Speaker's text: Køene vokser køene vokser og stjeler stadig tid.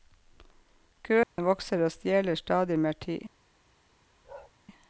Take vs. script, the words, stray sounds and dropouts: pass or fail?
fail